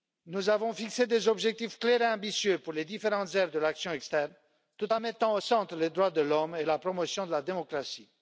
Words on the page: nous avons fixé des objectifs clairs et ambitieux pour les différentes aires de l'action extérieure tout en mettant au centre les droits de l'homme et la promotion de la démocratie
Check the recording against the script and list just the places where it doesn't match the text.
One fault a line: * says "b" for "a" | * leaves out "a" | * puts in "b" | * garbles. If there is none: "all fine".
all fine